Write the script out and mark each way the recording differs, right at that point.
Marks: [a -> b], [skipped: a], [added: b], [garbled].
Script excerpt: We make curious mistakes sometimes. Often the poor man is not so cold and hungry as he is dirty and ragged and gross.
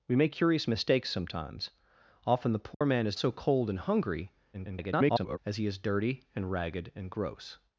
We make curious mistakes sometimes. Often the poor man is [skipped: not] so cold and hungry [garbled] as he is dirty and ragged and gross.